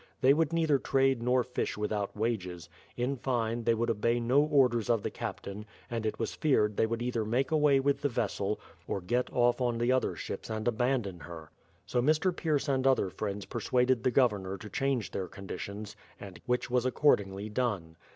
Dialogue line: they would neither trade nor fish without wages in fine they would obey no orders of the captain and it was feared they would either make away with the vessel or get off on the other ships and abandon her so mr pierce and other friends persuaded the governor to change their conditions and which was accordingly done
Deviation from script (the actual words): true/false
false